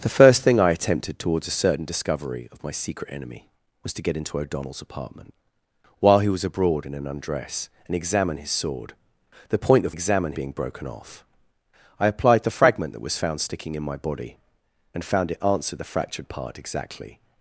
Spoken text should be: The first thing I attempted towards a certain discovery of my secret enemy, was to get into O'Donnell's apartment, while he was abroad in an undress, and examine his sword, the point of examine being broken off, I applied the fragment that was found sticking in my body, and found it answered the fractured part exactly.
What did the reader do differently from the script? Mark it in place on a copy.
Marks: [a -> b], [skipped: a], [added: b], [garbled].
The first thing I attempted towards a certain discovery of my secret enemy, was to get into O'Donnell's apartment, while he was abroad in an undress, and examine his sword, the point of examine being broken off, I applied the fragment that was found sticking in my body, and found it answered the fractured part exactly.